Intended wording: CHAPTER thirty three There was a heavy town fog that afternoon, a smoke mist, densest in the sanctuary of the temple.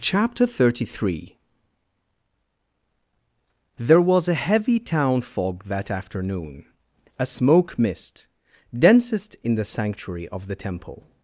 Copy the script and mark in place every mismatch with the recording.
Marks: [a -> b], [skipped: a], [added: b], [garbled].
CHAPTER thirty three There was a heavy town fog that afternoon, a smoke mist, densest in the sanctuary of the temple.